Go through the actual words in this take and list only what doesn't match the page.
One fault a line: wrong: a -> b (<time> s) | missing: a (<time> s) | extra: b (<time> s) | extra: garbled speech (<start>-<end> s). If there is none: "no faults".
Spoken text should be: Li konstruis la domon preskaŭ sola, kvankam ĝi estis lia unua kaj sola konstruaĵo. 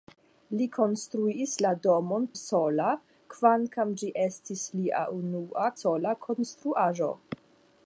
missing: preskaŭ (2.2 s)
missing: kaj (5.7 s)